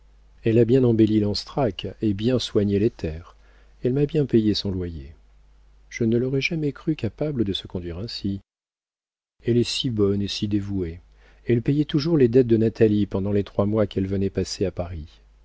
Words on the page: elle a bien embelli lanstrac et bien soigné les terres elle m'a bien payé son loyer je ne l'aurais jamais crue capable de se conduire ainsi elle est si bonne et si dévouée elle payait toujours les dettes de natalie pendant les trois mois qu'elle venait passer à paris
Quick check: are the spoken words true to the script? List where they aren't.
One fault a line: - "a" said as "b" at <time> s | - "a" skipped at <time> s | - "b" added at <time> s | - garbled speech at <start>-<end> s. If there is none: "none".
none